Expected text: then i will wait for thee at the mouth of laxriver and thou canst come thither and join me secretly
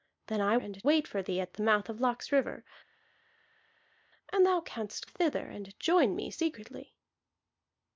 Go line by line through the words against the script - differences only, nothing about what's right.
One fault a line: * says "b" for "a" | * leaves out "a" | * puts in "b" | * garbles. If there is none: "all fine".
* says "and" for "will"
* leaves out "come"